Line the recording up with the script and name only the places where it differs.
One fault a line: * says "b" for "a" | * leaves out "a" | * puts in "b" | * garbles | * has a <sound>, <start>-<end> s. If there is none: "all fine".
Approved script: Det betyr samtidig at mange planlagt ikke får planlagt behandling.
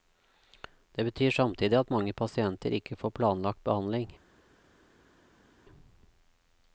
* says "pasienter" for "planlagt"